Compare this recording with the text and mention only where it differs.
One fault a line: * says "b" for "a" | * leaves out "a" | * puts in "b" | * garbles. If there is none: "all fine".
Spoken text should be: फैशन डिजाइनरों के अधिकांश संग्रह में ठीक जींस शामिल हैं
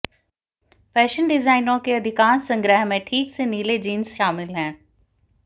* puts in "से नीले"